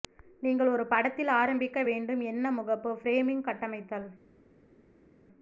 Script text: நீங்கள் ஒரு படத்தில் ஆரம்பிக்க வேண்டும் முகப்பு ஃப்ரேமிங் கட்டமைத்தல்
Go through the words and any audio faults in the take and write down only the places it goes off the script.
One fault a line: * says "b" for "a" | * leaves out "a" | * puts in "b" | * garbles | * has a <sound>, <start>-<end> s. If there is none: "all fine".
* puts in "என்ன"